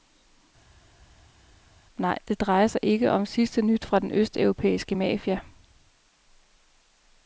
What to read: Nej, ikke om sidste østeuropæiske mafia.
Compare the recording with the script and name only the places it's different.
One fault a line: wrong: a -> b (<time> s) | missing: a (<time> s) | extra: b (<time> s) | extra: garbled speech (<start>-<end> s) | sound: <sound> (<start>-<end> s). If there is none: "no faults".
extra: det drejer sig (2.3 s)
extra: nyt fra den (3.6 s)